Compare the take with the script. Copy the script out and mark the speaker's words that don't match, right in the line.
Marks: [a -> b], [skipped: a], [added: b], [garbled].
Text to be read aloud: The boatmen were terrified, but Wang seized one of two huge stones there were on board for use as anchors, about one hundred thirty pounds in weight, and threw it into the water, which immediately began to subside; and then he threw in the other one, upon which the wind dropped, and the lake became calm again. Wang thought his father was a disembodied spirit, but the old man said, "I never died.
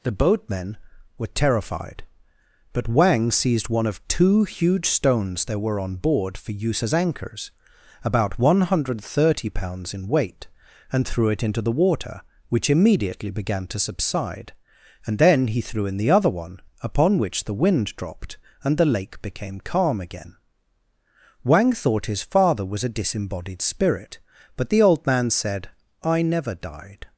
The boatmen were terrified, but Wang seized one of two huge stones there were on board for use as anchors, about one hundred thirty pounds in weight, and threw it into the water, which immediately began to subside; and then he threw in the other one, upon which the wind dropped, and the lake became calm again. Wang thought his father was a disembodied spirit, but the old man said, "I never died.